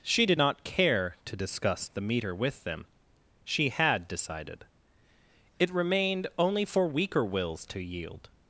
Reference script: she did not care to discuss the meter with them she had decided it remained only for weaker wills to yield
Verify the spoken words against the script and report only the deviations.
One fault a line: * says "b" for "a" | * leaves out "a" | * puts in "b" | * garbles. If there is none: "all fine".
all fine